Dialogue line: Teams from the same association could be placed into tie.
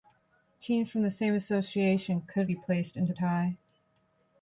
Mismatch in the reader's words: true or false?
false